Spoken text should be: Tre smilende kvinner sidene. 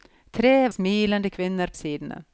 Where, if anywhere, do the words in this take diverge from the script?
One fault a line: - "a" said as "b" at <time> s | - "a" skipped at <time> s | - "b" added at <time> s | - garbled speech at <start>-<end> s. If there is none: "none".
none